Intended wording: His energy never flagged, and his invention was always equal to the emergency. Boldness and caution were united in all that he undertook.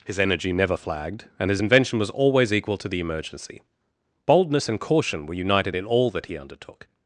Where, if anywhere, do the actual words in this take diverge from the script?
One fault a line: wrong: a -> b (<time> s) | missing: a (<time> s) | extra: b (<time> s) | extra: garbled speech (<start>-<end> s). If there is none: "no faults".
no faults